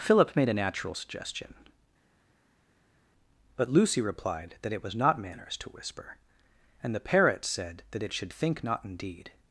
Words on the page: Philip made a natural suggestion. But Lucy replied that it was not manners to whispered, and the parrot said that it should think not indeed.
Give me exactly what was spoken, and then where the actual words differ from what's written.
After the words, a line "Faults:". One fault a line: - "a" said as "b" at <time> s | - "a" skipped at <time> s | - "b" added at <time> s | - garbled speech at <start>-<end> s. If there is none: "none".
Philip made a natural suggestion. But Lucy replied that it was not manners to whisper, and the parrot said that it should think not indeed.
Faults:
- "whispered" said as "whisper" at 5.7 s